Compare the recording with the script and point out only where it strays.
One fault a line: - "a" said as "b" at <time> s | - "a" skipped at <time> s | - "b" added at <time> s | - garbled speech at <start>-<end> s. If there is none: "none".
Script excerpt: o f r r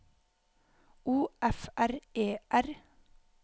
- "e" added at 2.1 s